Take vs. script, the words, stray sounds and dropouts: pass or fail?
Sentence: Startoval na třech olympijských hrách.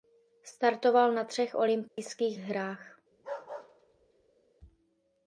fail